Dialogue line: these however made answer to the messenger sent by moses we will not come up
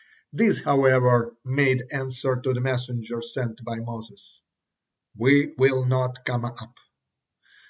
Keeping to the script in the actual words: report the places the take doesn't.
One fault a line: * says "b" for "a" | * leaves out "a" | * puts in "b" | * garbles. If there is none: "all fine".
all fine